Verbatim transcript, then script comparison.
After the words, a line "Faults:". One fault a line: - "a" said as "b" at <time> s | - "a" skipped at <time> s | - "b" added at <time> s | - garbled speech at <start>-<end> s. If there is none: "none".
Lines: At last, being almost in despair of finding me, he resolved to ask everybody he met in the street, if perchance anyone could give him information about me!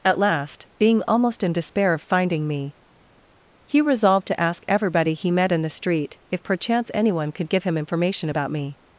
At last, being almost in despair of finding me, he resolved to ask everybody he met in the street, if perchance anyone could give him information about me!
Faults:
none